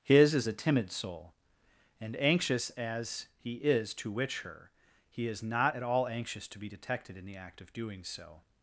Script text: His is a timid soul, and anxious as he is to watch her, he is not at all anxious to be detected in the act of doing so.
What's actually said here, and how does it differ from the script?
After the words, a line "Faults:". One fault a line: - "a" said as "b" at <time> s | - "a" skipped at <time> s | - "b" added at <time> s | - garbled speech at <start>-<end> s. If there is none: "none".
His is a timid soul, and anxious as he is to witch her, he is not at all anxious to be detected in the act of doing so.
Faults:
- "watch" said as "witch" at 4.1 s